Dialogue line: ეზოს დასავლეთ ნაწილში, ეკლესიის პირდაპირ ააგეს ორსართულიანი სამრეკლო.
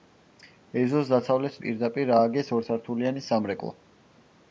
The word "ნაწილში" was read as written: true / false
false